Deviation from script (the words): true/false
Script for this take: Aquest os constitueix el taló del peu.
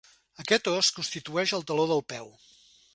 false